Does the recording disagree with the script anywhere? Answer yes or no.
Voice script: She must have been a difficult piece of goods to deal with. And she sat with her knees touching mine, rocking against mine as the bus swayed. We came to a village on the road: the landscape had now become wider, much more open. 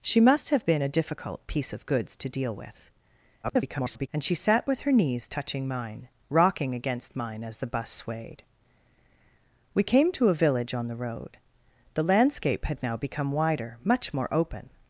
yes